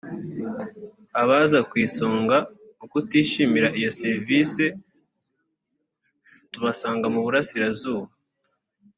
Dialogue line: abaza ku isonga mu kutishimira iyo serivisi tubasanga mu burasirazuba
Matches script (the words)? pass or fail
pass